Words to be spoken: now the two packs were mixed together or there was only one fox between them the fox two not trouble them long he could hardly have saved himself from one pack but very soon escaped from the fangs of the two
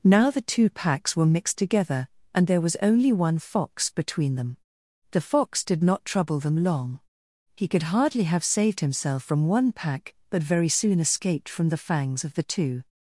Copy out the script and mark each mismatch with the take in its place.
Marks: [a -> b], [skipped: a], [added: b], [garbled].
now the two packs were mixed together [or -> and] there was only one fox between them the fox [two -> did] not trouble them long he could hardly have saved himself from one pack but very soon escaped from the fangs of the two